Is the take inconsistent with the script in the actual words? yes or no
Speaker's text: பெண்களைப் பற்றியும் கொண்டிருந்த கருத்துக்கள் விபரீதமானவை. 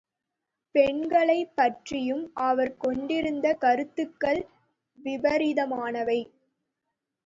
yes